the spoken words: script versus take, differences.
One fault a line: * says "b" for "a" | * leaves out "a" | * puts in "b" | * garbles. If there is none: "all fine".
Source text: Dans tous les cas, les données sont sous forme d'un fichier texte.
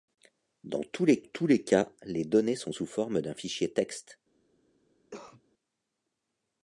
* puts in "tous les"